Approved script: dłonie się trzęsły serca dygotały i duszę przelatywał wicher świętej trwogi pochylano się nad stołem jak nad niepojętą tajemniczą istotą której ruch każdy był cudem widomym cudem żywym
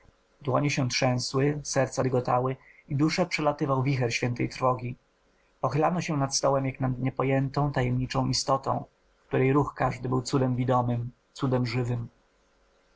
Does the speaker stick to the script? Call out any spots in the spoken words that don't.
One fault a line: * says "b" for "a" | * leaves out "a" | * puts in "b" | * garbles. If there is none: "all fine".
all fine